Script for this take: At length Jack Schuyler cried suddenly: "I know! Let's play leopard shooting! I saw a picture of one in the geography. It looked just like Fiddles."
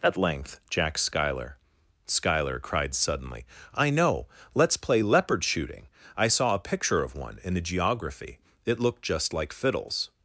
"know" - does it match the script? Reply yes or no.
yes